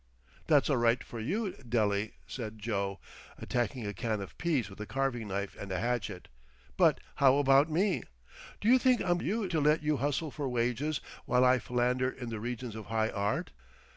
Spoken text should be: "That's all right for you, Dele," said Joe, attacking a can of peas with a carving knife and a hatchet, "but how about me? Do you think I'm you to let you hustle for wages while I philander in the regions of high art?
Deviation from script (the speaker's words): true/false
false